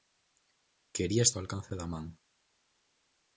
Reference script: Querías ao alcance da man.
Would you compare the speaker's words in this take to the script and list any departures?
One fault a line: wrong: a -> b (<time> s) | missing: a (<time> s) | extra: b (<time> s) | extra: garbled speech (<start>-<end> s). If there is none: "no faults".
no faults